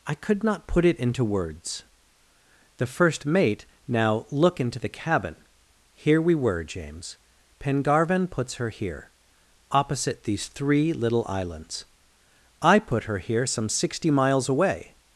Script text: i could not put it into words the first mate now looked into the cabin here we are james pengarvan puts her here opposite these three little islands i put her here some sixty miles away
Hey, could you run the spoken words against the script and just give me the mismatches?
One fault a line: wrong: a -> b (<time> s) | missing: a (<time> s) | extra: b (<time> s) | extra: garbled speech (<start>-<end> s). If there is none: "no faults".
wrong: looked -> look (4.3 s)
wrong: are -> were (6.3 s)